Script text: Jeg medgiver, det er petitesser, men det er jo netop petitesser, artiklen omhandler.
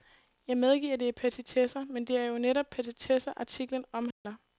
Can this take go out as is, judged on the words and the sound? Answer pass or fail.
fail